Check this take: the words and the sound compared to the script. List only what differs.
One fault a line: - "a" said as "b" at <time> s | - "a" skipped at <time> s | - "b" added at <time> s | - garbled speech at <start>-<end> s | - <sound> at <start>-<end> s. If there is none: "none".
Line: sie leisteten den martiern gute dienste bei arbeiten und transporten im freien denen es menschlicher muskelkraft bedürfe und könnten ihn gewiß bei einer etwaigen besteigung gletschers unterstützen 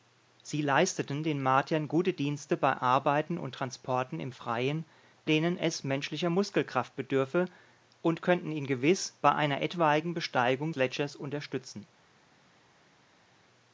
none